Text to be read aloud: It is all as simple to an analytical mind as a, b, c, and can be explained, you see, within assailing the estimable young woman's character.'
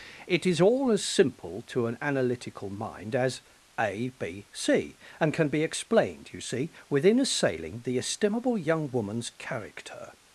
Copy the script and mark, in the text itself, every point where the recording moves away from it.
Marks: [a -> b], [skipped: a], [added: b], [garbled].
It is all as simple to an analytical mind as a, b, c, and can be explained, you see, within assailing the estimable young woman's character.'